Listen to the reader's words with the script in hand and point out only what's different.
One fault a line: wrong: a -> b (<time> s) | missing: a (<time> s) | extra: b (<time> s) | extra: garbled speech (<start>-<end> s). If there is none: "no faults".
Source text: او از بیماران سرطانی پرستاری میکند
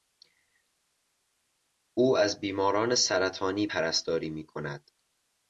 no faults